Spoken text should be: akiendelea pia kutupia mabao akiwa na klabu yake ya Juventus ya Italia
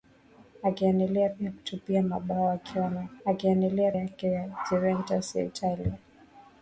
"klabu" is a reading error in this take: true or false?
true